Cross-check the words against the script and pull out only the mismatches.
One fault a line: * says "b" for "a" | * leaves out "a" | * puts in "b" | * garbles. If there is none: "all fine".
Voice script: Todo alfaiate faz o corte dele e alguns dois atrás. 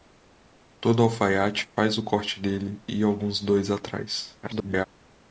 * garbles